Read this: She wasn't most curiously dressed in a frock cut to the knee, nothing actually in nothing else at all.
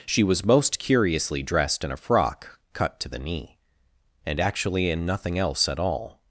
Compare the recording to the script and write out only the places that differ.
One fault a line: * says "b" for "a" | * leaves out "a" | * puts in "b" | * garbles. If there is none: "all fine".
* says "was" for "wasn't"
* says "and" for "nothing"